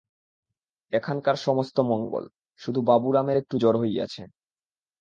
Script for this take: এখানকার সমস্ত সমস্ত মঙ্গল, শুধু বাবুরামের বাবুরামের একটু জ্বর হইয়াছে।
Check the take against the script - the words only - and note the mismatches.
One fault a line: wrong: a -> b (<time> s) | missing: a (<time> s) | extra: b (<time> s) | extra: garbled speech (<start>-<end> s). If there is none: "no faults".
missing: সমস্ত (1.8 s)
missing: বাবুরামের (3.4 s)